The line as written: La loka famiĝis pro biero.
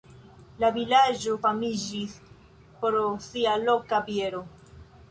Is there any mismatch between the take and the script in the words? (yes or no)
yes